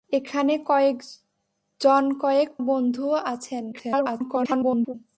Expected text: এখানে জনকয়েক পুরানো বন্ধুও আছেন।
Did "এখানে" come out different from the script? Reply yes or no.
no